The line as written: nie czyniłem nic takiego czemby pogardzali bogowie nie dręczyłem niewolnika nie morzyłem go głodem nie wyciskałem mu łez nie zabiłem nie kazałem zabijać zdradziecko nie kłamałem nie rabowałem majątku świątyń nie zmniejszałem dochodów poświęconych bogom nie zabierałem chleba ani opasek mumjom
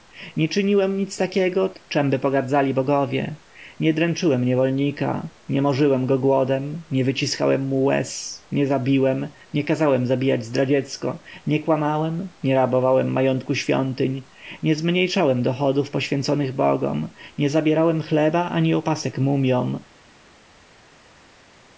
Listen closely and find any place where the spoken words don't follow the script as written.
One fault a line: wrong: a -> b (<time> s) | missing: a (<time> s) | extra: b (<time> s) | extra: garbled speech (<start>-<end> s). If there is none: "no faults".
no faults